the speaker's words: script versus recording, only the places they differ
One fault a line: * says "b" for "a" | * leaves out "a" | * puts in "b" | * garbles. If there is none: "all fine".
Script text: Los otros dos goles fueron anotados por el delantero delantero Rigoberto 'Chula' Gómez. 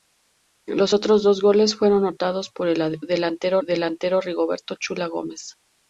all fine